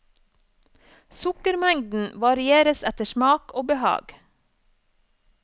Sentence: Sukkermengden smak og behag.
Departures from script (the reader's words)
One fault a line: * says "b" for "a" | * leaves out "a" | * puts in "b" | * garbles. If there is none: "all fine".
* puts in "varieres etter"